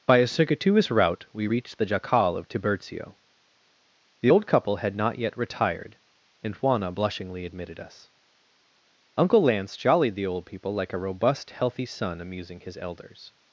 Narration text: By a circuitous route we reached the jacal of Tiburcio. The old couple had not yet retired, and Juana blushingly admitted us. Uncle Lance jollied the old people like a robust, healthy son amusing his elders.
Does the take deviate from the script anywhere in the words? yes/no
no